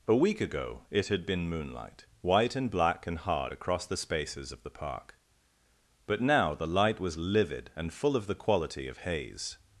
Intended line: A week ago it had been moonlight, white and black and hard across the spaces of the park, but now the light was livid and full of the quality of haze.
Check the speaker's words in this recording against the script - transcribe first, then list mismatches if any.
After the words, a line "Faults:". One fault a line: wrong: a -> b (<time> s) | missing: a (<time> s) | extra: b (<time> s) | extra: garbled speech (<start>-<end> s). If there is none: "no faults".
A week ago it had been moonlight, white and black and hard across the spaces of the park, but now the light was livid and full of the quality of haze.
Faults:
no faults